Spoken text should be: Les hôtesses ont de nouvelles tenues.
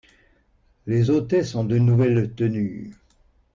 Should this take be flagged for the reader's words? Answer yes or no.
no